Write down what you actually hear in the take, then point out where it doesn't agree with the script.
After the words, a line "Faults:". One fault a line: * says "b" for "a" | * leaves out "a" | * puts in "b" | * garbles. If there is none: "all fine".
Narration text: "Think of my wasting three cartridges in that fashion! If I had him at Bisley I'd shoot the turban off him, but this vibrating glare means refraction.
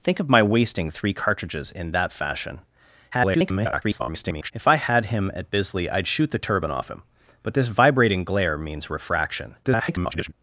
"Think of my wasting three cartridges in that fashion! [garbled] If I had him at Bisley I'd shoot the turban off him, but this vibrating glare means refraction. [garbled]
Faults:
* garbles
* garbles